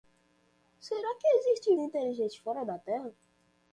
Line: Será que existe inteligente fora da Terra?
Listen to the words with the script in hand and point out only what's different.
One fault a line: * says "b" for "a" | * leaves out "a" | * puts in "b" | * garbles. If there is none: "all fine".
all fine